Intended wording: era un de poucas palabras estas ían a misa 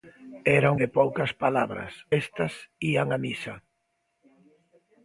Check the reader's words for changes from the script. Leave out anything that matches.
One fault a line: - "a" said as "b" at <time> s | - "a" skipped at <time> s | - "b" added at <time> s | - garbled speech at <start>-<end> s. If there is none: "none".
none